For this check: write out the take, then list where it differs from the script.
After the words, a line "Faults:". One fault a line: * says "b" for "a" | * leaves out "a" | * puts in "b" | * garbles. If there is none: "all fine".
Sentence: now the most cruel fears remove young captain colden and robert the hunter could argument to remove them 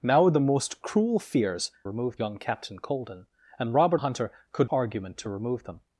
now the most cruel fears remove young captain colden and robert the hunter could argument to remove them
Faults:
all fine